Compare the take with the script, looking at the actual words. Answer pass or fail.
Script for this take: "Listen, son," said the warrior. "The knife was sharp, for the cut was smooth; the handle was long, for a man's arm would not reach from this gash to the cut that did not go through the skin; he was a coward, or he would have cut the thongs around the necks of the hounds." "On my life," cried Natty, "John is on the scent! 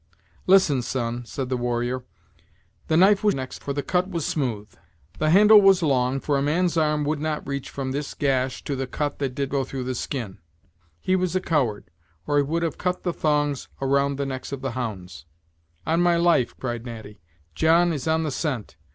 fail